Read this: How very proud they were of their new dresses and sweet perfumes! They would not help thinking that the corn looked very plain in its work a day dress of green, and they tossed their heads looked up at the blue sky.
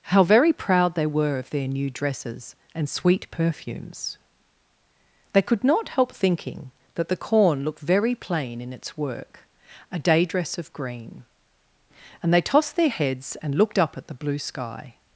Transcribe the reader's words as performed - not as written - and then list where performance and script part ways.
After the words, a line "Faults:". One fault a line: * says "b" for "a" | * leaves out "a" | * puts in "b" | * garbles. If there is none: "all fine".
How very proud they were of their new dresses and sweet perfumes! They could not help thinking that the corn looked very plain in its work a day dress of green, and they tossed their heads and looked up at the blue sky.
Faults:
* says "could" for "would"
* puts in "and"